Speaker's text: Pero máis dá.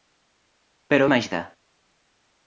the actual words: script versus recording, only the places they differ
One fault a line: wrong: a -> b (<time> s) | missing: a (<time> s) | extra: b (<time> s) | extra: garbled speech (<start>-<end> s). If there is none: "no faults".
no faults